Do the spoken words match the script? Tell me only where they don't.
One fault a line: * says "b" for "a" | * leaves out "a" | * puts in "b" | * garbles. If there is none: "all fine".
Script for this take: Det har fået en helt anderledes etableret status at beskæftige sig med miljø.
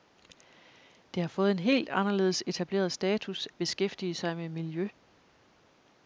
* leaves out "at"